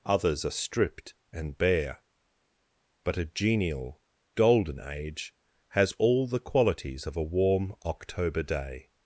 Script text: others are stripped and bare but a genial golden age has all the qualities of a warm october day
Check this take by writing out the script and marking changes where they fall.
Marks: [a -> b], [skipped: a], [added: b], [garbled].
others are stripped and bare but a genial golden age has all the qualities of a warm october day